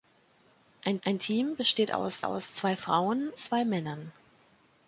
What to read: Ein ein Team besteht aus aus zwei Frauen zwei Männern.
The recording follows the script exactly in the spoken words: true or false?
true